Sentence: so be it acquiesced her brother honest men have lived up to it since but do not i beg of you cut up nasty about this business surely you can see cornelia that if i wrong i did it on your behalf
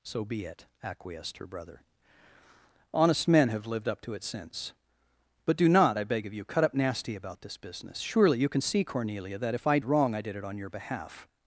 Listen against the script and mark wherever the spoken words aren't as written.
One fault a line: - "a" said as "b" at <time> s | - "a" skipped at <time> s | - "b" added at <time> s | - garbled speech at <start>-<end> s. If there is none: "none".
none